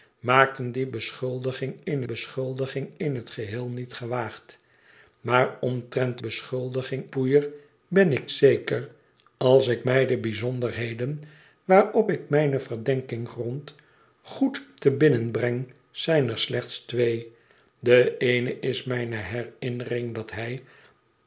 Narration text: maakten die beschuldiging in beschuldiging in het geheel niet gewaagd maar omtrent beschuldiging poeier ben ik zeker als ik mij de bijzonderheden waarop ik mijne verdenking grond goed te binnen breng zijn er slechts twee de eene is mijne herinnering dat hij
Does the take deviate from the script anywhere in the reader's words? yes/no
no